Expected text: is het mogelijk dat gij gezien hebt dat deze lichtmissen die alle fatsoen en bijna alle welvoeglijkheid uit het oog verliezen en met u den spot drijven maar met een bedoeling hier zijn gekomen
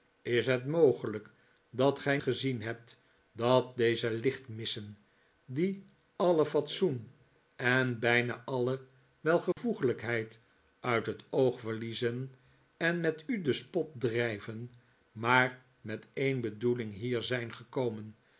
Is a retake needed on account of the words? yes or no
no